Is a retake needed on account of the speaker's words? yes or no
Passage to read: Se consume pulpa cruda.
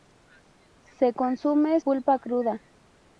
no